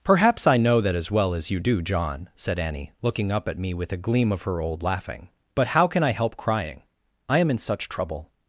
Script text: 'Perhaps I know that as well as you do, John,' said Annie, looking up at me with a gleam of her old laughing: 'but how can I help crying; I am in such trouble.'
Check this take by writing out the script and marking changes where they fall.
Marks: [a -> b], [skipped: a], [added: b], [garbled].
'Perhaps I know that as well as you do, John,' said Annie, looking up at me with a gleam of her old laughing: 'but how can I help crying; I am in such trouble.'